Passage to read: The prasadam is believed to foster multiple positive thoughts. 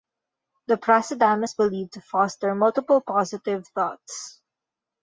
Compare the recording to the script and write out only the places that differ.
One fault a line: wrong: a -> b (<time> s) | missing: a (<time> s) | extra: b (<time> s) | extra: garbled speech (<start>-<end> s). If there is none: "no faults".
no faults